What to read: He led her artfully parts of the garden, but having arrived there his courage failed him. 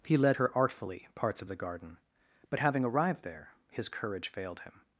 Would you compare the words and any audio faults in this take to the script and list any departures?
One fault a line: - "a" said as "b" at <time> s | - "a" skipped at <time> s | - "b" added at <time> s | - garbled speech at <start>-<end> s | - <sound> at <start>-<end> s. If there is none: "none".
none